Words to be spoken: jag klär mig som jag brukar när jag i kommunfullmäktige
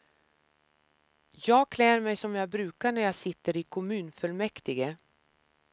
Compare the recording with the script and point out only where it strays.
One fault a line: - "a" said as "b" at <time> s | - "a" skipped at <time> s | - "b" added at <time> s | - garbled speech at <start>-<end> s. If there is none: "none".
- "sitter" added at 3.2 s